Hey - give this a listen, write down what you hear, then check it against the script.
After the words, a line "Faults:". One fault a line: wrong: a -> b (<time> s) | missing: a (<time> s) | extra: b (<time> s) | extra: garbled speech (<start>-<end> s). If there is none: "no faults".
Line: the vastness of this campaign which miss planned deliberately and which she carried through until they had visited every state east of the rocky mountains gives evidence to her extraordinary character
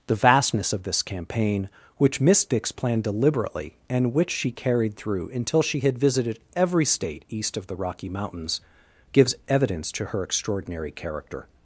the vastness of this campaign which miss dix planned deliberately and which she carried through until she had visited every state east of the rocky mountains gives evidence to her extraordinary character
Faults:
extra: dix (2.5 s)
wrong: they -> she (5.6 s)